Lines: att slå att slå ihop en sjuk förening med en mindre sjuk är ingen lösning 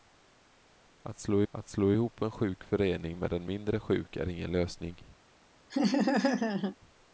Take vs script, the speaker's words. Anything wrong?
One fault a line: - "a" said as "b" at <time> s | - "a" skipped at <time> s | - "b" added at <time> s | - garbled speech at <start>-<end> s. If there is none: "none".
none